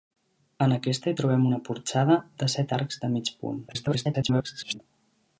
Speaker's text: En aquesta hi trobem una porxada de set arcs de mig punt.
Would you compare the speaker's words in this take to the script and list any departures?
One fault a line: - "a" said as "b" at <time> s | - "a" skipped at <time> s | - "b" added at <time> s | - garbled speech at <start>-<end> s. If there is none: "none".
- garbled speech at 3.7-4.8 s